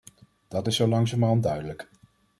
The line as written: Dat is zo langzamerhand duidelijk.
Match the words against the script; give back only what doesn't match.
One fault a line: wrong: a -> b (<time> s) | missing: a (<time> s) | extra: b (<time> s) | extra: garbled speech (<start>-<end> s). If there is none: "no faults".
no faults